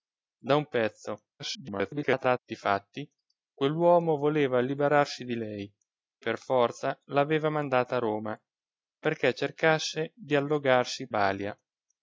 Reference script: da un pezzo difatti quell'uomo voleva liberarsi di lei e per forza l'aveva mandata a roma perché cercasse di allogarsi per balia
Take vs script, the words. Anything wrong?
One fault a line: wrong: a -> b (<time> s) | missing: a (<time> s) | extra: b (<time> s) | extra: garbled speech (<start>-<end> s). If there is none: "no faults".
extra: garbled speech (1.4-2.4 s)
missing: e (5.7 s)
missing: per (11.1 s)